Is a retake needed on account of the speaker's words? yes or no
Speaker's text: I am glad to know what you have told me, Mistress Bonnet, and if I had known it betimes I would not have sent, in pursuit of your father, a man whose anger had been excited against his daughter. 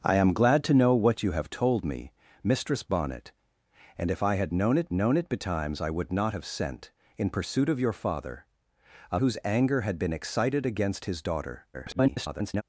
yes